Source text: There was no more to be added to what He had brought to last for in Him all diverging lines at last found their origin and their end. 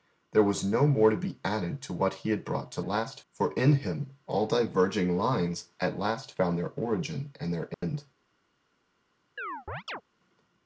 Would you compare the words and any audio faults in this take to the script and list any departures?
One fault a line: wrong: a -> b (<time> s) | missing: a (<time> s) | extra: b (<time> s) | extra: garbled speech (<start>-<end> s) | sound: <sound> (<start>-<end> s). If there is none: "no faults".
sound: dropout (7.7-7.8 s)
sound: chirp (9.4-10.0 s)